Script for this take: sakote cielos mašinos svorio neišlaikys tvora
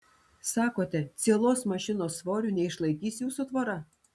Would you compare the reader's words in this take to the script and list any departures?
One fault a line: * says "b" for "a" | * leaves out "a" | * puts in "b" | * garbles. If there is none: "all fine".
* puts in "jūsų"